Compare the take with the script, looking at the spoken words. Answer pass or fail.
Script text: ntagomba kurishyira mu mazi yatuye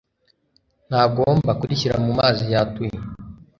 pass